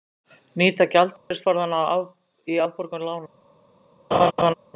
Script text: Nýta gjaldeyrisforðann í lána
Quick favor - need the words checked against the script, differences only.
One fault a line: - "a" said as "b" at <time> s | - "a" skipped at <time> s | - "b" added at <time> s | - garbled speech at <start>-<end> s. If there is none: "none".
- "afborgun" added at 2.7 s